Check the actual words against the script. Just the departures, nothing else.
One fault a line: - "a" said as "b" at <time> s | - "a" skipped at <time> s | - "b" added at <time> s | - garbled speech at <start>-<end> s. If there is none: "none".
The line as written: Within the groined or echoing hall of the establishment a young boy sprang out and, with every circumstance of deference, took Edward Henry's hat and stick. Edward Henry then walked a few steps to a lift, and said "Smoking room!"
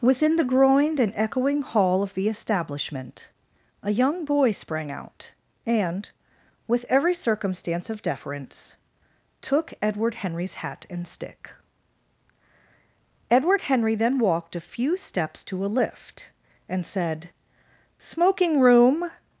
- "or" said as "and" at 1.0 s